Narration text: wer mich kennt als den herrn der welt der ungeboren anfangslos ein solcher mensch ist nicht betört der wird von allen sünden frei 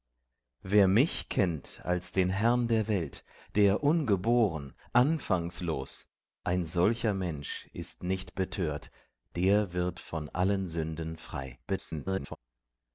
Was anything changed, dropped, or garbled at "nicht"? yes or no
no